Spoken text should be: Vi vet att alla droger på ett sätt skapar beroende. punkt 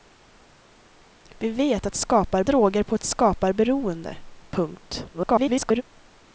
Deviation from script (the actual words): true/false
true